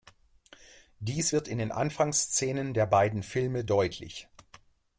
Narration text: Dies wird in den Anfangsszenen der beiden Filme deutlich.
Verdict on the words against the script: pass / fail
pass